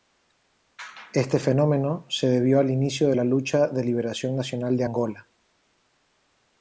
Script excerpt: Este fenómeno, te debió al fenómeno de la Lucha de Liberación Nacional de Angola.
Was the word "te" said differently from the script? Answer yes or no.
yes